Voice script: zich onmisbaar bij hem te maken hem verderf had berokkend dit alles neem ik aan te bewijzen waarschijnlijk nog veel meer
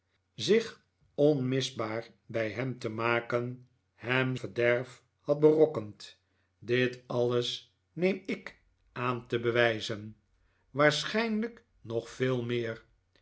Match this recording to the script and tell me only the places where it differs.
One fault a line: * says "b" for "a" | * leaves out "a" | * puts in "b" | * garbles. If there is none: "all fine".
all fine